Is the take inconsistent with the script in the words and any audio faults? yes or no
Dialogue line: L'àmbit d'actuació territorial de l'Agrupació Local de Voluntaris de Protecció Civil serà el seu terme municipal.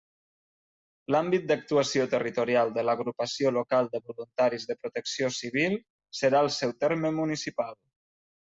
no